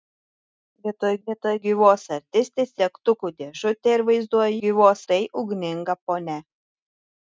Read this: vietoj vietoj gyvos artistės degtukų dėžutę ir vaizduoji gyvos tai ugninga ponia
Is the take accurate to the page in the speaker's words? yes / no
yes